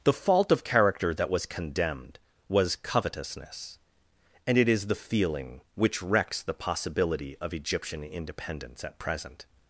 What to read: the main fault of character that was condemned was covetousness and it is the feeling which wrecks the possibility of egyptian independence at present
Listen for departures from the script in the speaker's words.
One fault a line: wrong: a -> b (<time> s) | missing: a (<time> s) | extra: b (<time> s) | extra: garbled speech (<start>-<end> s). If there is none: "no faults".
missing: main (0.1 s)